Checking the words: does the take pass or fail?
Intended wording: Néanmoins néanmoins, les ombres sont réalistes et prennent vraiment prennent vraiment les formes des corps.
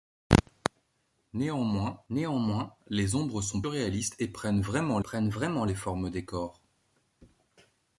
pass